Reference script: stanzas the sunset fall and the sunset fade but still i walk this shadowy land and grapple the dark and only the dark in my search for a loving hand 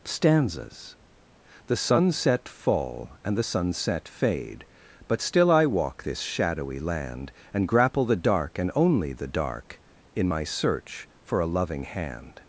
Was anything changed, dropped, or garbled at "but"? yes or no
no